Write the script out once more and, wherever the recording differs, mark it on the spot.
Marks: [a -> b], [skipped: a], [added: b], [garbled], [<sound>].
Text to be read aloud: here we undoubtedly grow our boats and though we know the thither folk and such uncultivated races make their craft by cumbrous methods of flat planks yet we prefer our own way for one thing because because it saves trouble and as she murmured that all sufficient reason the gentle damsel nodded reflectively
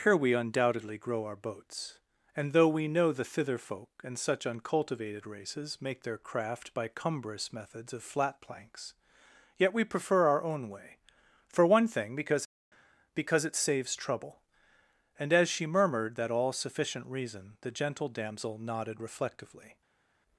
here we undoubtedly grow our boats and though we know the thither folk and such uncultivated races make their craft by cumbrous methods of flat planks yet we prefer our own way for one thing because because it saves trouble and as she murmured that all sufficient reason the gentle damsel nodded reflectively